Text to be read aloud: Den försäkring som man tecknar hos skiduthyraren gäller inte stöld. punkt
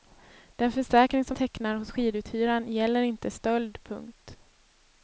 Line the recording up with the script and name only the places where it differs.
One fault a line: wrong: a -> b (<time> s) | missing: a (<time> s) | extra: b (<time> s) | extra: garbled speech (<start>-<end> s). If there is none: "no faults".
missing: man (1.4 s)